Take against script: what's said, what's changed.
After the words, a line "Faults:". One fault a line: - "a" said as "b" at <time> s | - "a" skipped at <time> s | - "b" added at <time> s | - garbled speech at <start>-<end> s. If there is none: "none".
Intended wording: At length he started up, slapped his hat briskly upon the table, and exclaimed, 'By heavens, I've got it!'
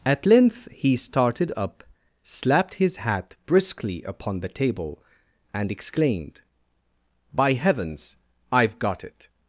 At length he started up, slapped his hat briskly upon the table, and exclaimed, 'By heavens, I've got it!'
Faults:
none